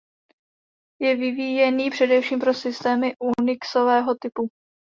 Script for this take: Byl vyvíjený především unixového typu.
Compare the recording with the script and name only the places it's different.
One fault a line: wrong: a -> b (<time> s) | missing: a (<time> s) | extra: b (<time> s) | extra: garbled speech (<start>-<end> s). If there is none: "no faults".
wrong: Byl -> Je (1.0 s)
extra: pro systémy (2.4 s)